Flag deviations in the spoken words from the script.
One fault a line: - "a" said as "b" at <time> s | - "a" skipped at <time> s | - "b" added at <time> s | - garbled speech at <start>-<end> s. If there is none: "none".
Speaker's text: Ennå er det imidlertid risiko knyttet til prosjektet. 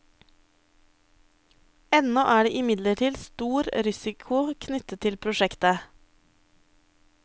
- "stor" added at 3.2 s